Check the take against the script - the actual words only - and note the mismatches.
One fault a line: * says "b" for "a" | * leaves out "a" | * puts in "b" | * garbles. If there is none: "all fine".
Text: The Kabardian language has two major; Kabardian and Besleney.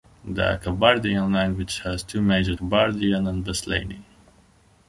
all fine